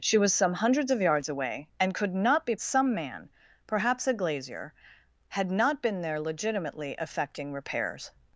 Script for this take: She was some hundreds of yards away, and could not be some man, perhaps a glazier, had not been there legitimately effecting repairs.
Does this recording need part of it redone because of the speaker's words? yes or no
no